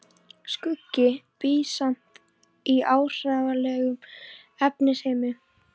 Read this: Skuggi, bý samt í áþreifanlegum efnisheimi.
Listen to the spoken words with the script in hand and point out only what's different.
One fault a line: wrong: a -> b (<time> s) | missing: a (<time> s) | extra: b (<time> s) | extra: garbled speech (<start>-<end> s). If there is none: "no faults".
no faults